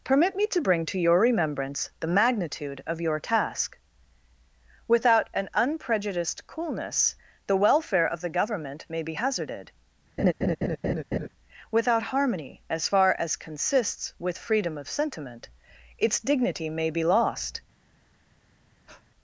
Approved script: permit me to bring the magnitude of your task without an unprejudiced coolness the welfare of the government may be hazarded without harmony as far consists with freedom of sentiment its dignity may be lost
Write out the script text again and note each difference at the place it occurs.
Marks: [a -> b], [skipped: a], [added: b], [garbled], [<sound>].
permit me to bring [added: to your remembrance] the magnitude of your task without an unprejudiced coolness the welfare of the government may be hazarded [laugh] without harmony as far [added: as] consists with freedom of sentiment its dignity may be lost [breath]